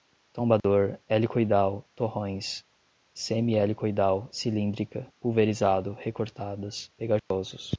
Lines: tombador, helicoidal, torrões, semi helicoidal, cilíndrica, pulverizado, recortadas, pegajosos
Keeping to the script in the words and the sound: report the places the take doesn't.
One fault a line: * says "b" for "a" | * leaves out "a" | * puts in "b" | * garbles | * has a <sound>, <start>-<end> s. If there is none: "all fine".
* has a dropout, 0.6-0.6 s
* has a dropout, 7.2-7.3 s